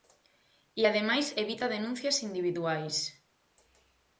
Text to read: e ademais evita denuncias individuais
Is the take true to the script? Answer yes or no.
yes